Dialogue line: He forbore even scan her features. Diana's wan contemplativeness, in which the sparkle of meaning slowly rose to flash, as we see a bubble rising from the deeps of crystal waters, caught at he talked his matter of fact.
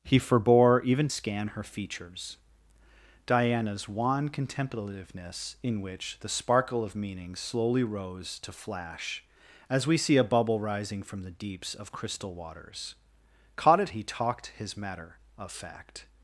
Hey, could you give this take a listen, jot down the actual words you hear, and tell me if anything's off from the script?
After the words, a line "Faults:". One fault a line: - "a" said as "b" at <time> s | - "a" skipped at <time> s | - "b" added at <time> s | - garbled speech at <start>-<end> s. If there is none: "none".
He forbore even scan her features. Diana's wan contemplativeness, in which the sparkle of meaning slowly rose to flash, as we see a bubble rising from the deeps of crystal waters, caught at he talked his matter of fact.
Faults:
none